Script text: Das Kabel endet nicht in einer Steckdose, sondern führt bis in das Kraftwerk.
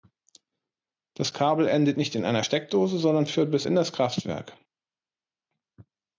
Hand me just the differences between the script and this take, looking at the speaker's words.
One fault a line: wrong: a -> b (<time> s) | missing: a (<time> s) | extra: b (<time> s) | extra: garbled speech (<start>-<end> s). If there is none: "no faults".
no faults